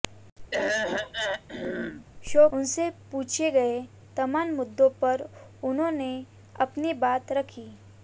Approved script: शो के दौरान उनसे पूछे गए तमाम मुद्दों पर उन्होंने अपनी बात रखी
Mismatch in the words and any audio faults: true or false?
true